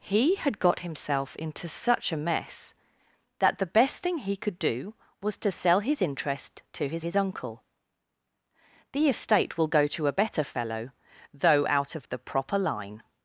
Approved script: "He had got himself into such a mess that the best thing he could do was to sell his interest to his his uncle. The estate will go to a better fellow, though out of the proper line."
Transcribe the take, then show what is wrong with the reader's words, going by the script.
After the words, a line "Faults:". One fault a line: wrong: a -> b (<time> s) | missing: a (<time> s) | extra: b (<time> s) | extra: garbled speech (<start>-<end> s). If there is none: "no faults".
"He had got himself into such a mess that the best thing he could do was to sell his interest to his his uncle. The estate will go to a better fellow, though out of the proper line."
Faults:
no faults